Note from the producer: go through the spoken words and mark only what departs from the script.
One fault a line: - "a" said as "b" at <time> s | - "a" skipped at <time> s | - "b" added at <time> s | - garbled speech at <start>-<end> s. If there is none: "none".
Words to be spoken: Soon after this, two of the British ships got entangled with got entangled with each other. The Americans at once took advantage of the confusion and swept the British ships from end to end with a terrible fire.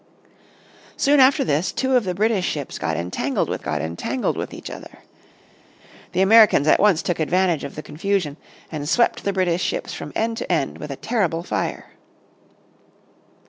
none